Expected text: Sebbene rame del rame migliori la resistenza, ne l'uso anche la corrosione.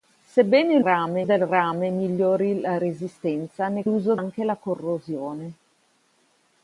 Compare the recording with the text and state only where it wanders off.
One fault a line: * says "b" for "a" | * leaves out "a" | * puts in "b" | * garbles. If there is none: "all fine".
all fine